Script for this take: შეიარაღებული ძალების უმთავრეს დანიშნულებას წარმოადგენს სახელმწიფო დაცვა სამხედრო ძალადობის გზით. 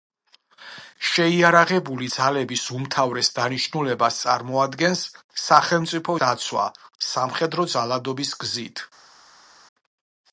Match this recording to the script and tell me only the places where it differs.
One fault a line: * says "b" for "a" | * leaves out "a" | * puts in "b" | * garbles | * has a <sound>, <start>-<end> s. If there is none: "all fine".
all fine